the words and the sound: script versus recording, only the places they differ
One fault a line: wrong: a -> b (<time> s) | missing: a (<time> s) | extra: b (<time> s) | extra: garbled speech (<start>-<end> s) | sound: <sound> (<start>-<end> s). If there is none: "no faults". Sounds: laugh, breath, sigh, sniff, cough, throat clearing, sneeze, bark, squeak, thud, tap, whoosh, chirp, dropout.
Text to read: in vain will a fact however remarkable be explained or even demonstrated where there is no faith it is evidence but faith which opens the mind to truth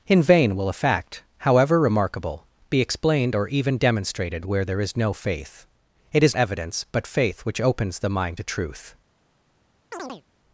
sound: chirp (9.9-10.2 s)